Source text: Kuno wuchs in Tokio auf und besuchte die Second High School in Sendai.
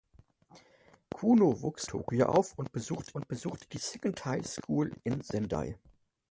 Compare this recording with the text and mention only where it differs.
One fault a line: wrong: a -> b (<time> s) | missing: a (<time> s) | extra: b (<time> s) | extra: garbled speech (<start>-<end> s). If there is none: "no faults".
missing: in (1.9 s)
extra: und besuchte (3.1 s)